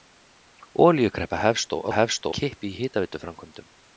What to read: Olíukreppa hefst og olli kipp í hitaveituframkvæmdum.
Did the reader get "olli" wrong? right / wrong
wrong